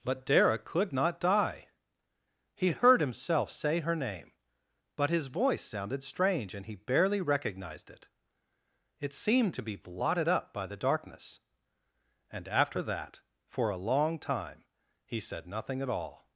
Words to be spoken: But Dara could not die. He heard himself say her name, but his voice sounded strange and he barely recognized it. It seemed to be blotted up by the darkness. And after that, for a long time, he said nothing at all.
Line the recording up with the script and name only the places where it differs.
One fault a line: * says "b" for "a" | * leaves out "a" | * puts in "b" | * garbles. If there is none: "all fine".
all fine